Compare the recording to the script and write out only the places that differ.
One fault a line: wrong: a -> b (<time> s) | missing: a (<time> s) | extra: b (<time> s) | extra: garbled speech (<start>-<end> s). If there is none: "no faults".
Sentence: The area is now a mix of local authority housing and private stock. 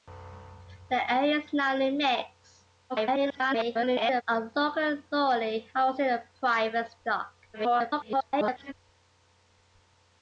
extra: garbled speech (2.9-4.2 s)
extra: garbled speech (7.5-8.7 s)